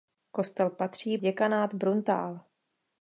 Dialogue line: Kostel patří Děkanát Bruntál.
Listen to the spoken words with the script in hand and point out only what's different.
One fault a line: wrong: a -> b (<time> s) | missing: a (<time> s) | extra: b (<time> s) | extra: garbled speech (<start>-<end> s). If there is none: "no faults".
no faults